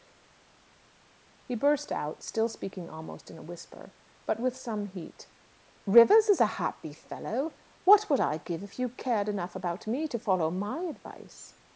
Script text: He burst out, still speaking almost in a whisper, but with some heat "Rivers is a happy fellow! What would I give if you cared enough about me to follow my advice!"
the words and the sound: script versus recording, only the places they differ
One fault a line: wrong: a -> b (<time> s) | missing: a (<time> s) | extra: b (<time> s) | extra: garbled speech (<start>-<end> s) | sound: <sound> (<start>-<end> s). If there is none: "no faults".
no faults